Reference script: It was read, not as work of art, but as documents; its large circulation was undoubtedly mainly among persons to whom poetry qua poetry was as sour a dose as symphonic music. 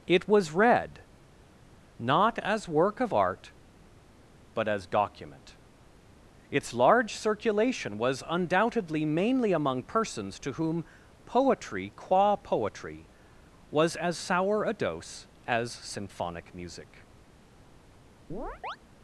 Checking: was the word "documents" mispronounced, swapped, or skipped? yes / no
yes